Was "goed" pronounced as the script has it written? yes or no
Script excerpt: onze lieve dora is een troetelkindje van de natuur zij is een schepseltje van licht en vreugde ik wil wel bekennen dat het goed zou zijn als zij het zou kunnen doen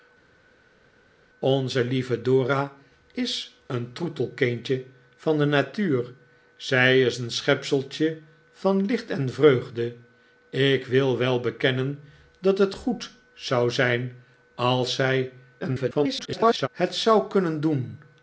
yes